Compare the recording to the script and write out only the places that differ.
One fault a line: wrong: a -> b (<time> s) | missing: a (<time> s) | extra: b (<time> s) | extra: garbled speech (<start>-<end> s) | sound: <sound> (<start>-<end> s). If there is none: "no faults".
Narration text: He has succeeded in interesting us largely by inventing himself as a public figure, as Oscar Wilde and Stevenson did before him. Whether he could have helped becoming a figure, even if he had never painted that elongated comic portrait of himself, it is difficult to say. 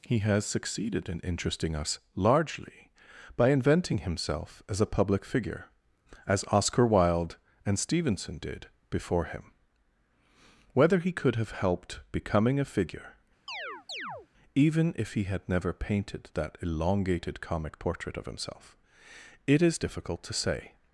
sound: chirp (13.5-14.3 s)